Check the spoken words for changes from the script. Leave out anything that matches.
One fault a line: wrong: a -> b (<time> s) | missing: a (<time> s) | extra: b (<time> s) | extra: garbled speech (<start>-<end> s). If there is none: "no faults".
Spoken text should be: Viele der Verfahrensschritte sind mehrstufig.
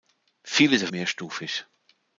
missing: Verfahrensschritte sind (0.9 s)